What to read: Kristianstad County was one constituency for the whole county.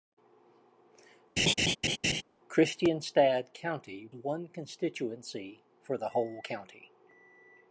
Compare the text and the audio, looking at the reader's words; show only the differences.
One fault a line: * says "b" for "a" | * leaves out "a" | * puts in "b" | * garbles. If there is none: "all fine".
* leaves out "was"